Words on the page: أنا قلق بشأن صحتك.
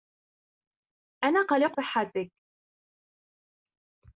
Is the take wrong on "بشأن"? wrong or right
wrong